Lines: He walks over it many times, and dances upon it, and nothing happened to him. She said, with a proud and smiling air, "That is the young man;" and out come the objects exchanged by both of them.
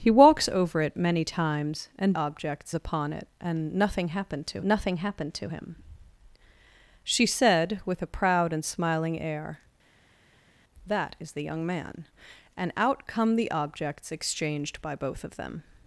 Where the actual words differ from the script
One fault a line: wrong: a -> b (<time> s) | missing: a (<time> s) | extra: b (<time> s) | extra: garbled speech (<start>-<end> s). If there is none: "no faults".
wrong: dances -> objects (2.1 s)
extra: nothing happened to (4.6 s)